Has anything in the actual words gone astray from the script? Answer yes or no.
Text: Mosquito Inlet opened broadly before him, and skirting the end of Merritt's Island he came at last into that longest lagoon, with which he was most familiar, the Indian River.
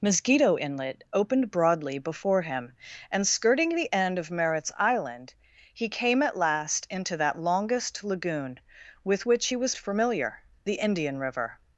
yes